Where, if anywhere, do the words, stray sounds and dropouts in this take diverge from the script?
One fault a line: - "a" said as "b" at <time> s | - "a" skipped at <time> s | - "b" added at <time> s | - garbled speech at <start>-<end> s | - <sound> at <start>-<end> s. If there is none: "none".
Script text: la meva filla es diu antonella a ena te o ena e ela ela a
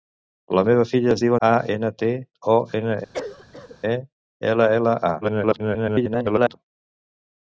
- "antonella" skipped at 1.3 s
- cough at 3.1-3.8 s
- garbled speech at 5.2-6.6 s